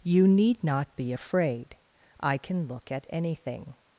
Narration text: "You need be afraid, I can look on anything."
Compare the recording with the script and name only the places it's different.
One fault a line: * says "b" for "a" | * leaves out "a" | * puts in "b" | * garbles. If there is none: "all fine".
* puts in "not"
* says "at" for "on"